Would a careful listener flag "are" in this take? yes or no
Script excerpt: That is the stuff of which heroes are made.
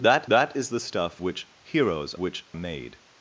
yes